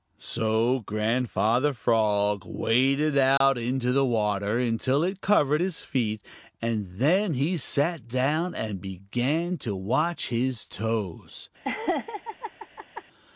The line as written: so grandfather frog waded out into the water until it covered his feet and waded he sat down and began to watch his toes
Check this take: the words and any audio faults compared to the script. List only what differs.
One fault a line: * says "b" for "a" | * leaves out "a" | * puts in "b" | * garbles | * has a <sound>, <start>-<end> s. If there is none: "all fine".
* has a dropout, 3.4-3.4 s
* says "then" for "waded"
* has a laugh, 11.6-13.0 s